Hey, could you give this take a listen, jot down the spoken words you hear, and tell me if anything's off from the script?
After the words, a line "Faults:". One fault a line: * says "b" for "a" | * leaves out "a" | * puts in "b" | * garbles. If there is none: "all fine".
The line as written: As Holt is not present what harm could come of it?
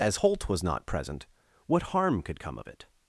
As Holt was not present what harm could come of it?
Faults:
* says "was" for "is"